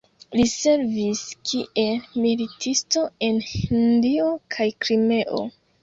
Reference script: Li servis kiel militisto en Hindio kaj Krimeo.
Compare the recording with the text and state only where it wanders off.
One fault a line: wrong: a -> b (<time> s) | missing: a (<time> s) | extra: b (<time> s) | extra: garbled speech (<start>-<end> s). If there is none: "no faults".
no faults